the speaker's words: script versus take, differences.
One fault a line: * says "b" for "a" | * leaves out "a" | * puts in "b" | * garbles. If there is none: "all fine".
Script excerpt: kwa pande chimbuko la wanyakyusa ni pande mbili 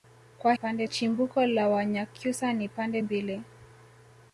all fine